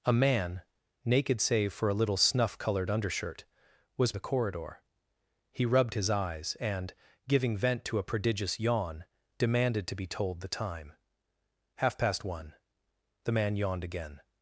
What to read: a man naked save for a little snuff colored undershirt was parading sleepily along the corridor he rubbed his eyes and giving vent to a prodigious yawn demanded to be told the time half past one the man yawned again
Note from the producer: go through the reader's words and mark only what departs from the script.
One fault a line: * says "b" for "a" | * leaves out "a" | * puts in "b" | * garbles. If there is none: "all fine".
* leaves out "parading sleepily along"